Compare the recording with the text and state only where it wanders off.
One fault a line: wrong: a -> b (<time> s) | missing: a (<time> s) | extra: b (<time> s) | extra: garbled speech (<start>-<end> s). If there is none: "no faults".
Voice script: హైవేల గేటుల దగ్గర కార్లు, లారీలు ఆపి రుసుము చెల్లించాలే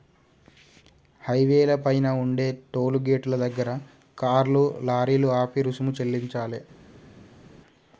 extra: పైన ఉండే టోలు (1.8 s)